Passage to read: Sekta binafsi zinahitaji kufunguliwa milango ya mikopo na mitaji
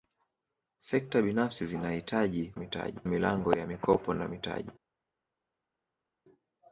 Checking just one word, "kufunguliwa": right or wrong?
wrong